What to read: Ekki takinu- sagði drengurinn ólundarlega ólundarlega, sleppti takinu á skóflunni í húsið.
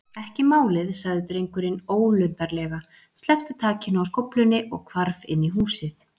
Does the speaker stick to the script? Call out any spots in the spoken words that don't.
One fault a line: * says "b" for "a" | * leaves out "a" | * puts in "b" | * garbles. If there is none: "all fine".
* says "málið" for "takinu"
* leaves out "ólundarlega"
* puts in "og hvarf inn"